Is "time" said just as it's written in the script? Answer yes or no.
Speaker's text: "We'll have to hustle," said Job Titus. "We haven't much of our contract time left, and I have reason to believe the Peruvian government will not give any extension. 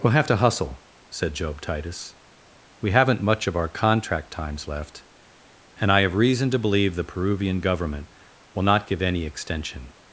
no